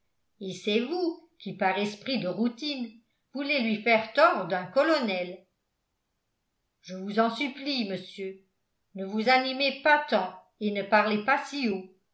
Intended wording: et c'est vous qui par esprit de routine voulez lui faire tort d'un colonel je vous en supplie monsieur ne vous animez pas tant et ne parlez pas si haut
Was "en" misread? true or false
false